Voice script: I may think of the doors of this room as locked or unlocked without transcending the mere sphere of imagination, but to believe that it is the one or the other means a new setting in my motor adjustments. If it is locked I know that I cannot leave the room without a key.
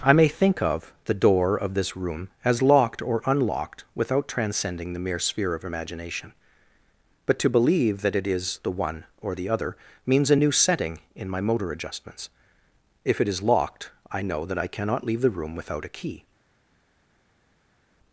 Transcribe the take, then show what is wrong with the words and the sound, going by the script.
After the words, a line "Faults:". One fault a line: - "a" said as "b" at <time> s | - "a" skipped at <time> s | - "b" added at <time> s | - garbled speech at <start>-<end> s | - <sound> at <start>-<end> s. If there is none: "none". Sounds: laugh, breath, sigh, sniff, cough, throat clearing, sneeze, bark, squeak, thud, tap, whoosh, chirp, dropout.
I may think of the door of this room as locked or unlocked without transcending the mere sphere of imagination, but to believe that it is the one or the other means a new setting in my motor adjustments. If it is locked I know that I cannot leave the room without a key.
Faults:
- "doors" said as "door" at 1.1 s